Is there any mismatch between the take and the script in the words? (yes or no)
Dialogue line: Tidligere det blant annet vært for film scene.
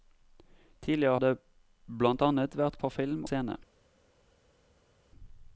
no